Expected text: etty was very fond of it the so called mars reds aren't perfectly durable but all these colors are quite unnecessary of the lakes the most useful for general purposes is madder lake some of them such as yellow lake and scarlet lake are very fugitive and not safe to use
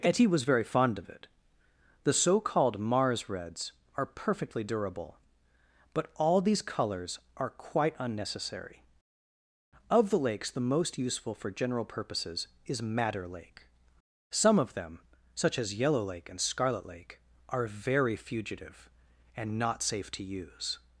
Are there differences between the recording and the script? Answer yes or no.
yes